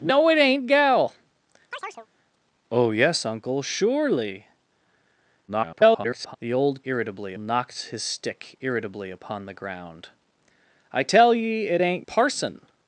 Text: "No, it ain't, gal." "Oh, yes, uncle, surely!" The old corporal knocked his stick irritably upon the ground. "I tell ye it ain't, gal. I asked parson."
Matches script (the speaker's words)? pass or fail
fail